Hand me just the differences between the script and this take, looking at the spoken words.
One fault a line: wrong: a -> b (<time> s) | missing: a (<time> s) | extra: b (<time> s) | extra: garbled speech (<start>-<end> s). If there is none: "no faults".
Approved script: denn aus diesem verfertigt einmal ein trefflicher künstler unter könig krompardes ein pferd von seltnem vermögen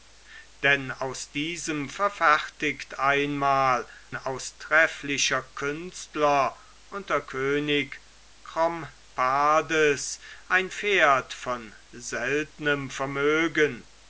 wrong: ein -> aus (4.1 s)